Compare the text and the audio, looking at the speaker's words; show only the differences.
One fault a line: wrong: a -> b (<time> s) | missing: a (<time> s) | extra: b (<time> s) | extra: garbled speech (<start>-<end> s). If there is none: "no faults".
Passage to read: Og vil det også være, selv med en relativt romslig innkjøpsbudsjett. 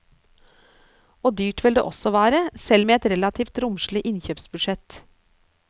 extra: dyrt (1.4 s)
wrong: en -> et (3.0 s)